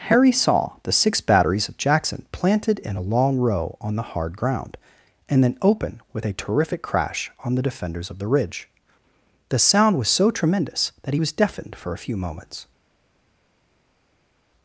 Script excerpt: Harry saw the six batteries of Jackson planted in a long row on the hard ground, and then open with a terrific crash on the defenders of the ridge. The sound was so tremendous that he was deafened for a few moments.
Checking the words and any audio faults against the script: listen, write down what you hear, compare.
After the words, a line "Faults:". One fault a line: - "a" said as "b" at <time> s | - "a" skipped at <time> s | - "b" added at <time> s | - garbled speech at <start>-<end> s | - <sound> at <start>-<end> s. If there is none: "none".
Harry saw the six batteries of Jackson planted in a long row on the hard ground, and then open with a terrific crash on the defenders of the ridge. The sound was so tremendous that he was deafened for a few moments.
Faults:
none